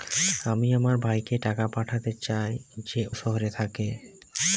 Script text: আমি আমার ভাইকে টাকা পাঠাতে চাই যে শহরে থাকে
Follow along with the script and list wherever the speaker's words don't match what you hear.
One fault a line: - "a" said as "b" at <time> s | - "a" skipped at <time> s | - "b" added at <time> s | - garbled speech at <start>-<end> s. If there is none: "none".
none